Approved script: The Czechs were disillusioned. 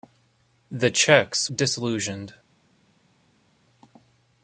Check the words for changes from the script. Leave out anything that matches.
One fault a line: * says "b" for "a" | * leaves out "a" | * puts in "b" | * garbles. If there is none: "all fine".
* leaves out "were"